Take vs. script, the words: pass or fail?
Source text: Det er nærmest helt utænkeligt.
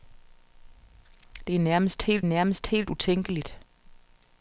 fail